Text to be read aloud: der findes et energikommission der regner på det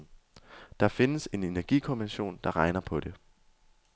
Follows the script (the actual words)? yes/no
no